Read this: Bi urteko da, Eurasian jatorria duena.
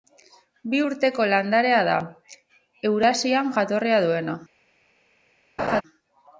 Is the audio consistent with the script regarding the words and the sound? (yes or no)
no